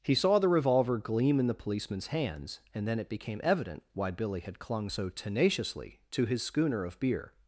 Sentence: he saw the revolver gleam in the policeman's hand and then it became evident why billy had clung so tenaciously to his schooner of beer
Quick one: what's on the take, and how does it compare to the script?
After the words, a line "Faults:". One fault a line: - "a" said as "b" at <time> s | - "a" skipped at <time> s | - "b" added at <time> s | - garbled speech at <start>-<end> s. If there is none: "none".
he saw the revolver gleam in the policeman's hands and then it became evident why billy had clung so tenaciously to his schooner of beer
Faults:
- "hand" said as "hands" at 2.1 s